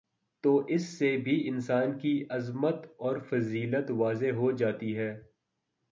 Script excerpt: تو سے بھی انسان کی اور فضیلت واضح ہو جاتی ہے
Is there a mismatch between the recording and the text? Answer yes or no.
yes